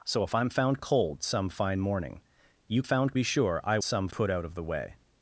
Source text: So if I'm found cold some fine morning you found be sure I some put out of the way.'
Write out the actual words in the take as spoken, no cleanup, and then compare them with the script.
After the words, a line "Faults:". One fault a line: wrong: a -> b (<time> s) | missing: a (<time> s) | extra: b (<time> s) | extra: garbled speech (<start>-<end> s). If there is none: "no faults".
So if I'm found cold some fine morning you found be sure I some put out of the way.'
Faults:
no faults